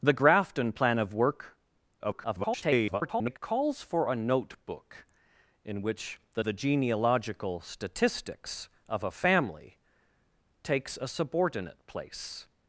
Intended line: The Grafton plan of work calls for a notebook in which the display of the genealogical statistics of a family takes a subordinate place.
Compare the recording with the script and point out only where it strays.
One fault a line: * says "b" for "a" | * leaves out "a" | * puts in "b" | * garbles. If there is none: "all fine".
* garbles
* leaves out "display of"